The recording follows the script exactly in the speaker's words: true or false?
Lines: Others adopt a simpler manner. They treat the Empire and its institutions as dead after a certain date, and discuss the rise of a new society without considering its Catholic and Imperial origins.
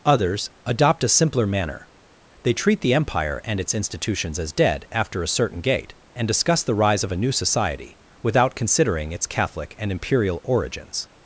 false